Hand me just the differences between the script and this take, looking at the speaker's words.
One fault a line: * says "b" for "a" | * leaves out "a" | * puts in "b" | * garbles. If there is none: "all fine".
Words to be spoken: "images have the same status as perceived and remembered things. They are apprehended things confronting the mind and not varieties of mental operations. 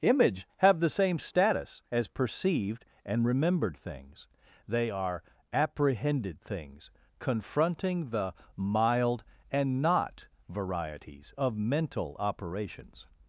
* says "image" for "images"
* says "mild" for "mind"